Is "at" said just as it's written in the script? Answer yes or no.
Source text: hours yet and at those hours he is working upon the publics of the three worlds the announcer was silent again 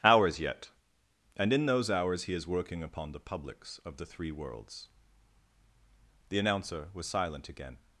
no